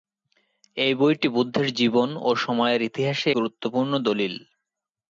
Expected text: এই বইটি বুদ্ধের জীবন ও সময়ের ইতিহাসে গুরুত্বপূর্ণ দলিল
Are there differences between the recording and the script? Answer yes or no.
no